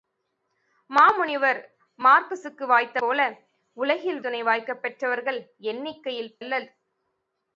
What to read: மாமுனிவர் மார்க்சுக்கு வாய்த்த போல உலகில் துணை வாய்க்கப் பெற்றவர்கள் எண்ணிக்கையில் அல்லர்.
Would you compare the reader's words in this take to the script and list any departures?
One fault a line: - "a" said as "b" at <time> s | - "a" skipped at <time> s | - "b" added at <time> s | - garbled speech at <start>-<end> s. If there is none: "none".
none